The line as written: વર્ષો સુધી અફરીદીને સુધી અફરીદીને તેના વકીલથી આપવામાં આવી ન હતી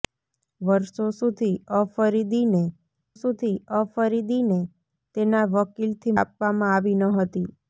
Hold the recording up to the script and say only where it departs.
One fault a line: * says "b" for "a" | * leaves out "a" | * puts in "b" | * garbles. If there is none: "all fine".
all fine